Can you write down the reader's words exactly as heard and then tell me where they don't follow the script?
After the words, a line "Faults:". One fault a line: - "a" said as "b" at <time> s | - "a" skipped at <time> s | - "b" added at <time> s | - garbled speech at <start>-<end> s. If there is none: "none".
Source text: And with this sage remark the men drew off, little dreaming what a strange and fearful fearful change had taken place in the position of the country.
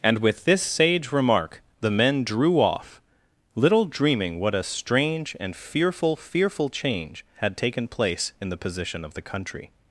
And with this sage remark the men drew off, little dreaming what a strange and fearful fearful change had taken place in the position of the country.
Faults:
none